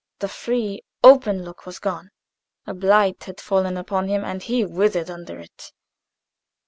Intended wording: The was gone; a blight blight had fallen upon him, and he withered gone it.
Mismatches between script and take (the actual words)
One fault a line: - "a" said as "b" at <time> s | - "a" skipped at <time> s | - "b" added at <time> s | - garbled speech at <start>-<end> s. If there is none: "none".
- "free open look" added at 0.3 s
- "blight" skipped at 3.2 s
- "gone" said as "under" at 5.1 s